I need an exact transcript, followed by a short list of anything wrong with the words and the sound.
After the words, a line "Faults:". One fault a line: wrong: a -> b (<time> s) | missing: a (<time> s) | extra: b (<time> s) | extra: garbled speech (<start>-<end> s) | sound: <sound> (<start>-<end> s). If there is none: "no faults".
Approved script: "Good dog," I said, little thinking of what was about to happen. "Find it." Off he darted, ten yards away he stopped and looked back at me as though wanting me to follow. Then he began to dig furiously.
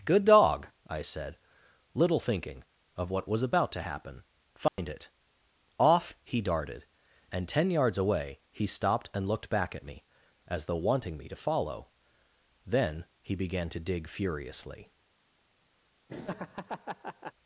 "Good dog," I said, little thinking of what was about to happen. "Find it." Off he darted, and ten yards away he stopped and looked back at me as though wanting me to follow. Then he began to dig furiously.
Faults:
sound: dropout (4.7-4.8 s)
extra: and (7.3 s)
sound: laugh (16.1-17.3 s)